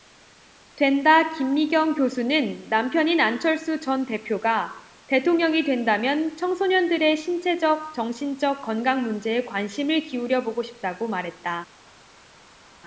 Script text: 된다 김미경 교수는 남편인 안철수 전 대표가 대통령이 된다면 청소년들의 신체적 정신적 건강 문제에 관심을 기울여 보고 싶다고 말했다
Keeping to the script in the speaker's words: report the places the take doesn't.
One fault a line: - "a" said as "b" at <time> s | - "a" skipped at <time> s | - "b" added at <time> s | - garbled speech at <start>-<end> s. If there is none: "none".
none